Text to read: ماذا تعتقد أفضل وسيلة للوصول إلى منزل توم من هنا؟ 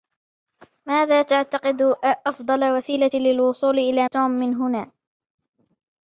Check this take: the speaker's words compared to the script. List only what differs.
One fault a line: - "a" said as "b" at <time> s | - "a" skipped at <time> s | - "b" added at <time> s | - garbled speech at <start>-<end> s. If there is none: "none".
- "منزل" skipped at 4.1 s